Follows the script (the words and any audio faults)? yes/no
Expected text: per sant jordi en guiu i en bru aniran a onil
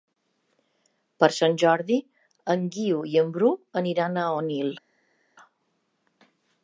yes